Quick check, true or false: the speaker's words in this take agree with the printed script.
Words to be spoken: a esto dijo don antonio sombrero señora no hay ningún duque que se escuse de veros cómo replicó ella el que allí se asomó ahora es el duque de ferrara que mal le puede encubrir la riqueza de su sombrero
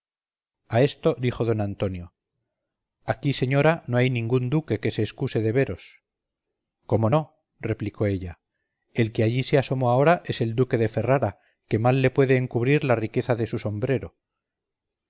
false